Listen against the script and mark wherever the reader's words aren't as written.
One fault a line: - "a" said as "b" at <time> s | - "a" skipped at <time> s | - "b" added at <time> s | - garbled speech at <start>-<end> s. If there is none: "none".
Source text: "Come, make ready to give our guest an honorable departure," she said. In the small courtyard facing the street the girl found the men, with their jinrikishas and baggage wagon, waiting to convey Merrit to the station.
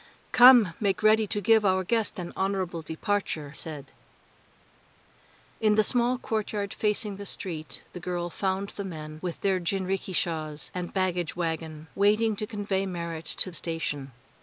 - "she" skipped at 3.5 s
- "the" skipped at 13.5 s